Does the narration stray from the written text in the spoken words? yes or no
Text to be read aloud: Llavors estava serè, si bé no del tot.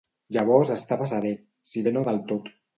no